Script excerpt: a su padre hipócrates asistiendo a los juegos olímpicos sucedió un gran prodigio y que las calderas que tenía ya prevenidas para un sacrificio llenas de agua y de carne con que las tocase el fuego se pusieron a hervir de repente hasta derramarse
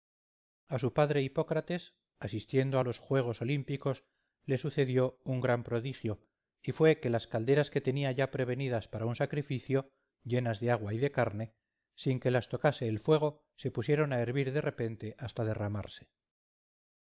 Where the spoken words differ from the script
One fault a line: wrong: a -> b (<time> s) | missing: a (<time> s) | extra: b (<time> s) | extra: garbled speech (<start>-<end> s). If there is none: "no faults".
extra: le (4.4 s)
extra: fue (6.7 s)
wrong: con -> sin (11.9 s)